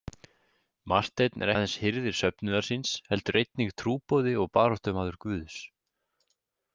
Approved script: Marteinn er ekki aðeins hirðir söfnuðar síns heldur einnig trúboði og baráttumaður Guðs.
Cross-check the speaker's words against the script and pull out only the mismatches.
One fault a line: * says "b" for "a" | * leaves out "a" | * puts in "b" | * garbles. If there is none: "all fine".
* leaves out "ekki"